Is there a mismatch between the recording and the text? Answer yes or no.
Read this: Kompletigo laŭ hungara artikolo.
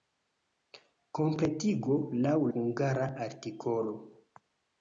no